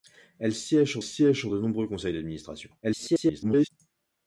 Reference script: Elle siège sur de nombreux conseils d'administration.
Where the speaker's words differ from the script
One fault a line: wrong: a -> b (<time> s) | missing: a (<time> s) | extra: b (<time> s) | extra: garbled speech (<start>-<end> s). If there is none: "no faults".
extra: siège sur (1.0 s)
extra: garbled speech (2.8-3.7 s)